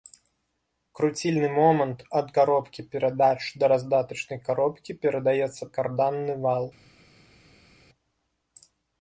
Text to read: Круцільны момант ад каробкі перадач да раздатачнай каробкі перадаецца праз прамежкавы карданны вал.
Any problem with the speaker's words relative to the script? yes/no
yes